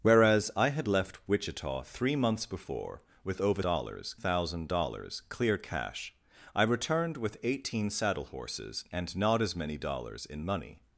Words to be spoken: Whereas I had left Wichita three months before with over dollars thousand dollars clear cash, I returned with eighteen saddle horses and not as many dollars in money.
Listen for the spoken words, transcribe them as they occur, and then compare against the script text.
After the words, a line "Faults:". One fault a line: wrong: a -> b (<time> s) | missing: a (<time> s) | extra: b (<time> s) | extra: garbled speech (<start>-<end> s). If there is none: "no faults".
Whereas I had left Wichita three months before with over dollars thousand dollars clear cash, I returned with eighteen saddle horses and not as many dollars in money.
Faults:
no faults